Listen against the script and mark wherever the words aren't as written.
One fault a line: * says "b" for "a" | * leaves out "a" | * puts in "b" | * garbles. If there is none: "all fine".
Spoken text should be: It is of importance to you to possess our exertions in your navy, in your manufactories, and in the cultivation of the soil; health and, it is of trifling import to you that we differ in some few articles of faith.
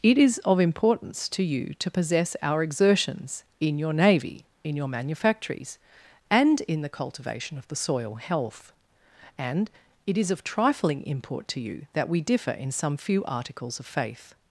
all fine